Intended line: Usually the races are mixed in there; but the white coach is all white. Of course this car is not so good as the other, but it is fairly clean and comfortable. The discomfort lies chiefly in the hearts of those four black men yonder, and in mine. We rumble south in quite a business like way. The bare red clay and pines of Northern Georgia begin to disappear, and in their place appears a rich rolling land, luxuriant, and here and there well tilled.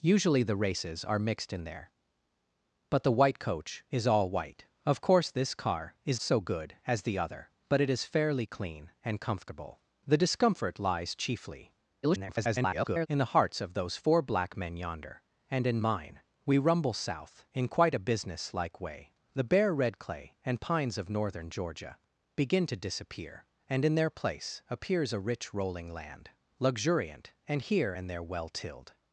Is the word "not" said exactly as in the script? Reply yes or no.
no